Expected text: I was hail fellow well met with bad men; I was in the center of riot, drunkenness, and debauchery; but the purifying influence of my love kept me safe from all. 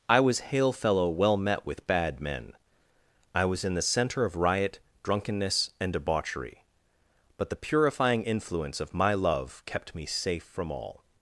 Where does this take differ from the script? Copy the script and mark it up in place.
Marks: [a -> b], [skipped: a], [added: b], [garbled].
I was hail fellow well met with bad men; I was in the center of riot, drunkenness, and debauchery; but the purifying influence of my love kept me safe from all.